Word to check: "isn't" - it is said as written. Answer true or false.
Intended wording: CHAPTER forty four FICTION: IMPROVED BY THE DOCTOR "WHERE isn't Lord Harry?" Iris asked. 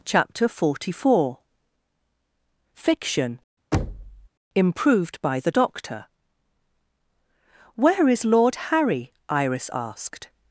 false